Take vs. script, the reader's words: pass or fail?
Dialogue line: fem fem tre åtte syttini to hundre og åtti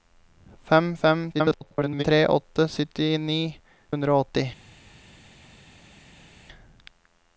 fail